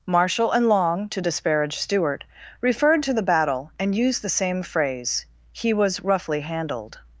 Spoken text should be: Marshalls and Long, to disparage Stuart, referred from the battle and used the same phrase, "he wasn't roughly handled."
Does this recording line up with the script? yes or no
no